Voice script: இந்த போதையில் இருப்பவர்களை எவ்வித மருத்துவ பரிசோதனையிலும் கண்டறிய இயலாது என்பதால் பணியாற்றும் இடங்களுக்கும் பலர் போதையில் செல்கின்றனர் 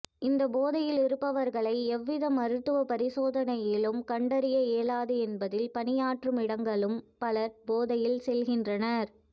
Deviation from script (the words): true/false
false